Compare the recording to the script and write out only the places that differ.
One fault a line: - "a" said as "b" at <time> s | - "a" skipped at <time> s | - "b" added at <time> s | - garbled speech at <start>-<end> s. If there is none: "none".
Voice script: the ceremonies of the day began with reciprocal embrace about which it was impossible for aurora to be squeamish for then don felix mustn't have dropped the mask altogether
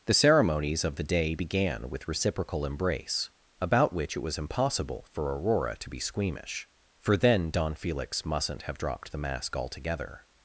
none